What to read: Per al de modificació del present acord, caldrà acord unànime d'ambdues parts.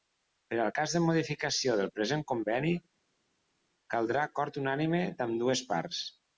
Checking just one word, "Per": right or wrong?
right